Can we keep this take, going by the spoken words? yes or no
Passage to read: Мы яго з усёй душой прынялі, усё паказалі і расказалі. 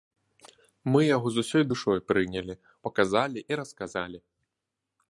no